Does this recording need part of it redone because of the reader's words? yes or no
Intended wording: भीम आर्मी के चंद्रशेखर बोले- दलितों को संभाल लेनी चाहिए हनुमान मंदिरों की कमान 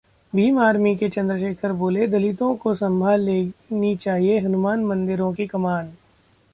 no